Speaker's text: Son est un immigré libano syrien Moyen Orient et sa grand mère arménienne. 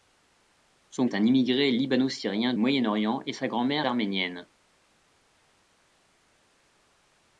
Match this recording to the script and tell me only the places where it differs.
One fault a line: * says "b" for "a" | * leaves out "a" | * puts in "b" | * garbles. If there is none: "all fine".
all fine